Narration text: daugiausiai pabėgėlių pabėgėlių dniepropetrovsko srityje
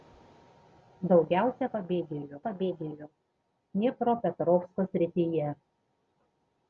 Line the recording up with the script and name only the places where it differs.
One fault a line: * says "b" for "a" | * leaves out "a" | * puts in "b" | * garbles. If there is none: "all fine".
all fine